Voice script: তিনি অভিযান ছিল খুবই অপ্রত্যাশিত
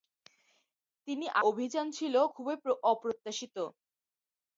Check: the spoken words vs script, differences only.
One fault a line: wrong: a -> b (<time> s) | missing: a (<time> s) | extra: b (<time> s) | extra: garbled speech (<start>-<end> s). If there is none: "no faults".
no faults